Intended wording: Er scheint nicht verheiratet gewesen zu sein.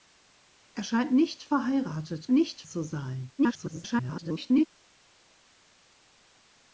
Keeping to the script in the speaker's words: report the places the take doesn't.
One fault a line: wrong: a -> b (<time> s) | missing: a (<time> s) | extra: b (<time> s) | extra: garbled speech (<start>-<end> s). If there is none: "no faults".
wrong: gewesen -> nicht (2.3 s)
extra: garbled speech (3.4-4.7 s)